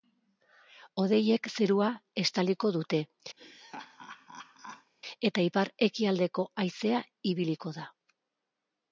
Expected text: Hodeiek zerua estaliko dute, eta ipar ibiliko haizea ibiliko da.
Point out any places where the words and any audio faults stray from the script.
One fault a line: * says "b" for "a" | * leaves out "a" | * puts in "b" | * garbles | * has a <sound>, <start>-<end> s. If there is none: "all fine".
* has a laugh, 3.4-4.9 s
* says "ekialdeko" for "ibiliko"